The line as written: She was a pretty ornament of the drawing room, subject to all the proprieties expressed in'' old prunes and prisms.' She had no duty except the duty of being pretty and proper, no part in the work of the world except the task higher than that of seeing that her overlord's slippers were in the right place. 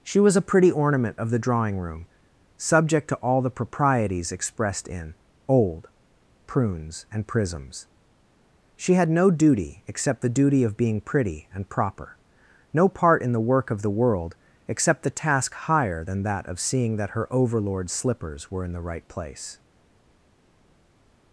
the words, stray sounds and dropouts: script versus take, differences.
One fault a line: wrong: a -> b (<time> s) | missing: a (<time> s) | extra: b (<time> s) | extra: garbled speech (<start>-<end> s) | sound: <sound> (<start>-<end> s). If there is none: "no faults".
no faults